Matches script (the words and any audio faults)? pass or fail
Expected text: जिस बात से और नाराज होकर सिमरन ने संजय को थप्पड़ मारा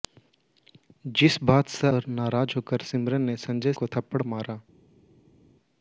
pass